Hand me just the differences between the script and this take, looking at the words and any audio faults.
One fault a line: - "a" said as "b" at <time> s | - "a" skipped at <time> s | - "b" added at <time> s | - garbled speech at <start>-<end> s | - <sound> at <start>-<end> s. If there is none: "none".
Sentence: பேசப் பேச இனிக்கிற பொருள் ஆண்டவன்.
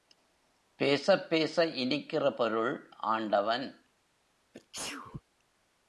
- sneeze at 4.5-5.2 s